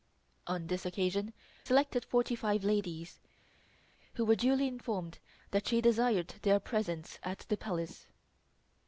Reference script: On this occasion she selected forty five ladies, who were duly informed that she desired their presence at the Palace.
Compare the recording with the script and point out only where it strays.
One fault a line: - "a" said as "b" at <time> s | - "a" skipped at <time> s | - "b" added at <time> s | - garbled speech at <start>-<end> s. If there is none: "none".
- "she" skipped at 1.3 s